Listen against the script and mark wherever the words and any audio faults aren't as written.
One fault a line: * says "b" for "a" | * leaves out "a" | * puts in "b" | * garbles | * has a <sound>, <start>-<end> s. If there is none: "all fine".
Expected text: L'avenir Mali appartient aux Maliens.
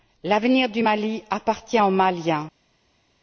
* puts in "du"